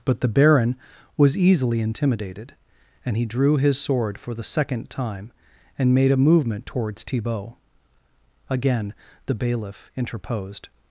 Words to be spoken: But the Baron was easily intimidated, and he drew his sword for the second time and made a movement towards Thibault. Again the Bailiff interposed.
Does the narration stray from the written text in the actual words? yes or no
no